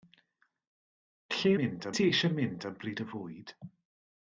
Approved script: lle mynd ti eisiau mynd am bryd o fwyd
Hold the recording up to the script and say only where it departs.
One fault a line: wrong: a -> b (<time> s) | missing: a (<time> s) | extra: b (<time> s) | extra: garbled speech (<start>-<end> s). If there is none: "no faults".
no faults